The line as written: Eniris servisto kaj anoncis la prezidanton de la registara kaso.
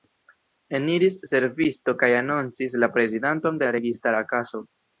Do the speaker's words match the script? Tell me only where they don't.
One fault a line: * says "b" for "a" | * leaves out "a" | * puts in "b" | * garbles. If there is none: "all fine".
all fine